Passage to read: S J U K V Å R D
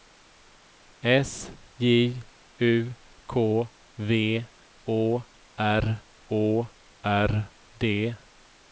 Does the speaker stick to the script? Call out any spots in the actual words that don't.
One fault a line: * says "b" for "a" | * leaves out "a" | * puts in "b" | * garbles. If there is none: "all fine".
* puts in "Å R"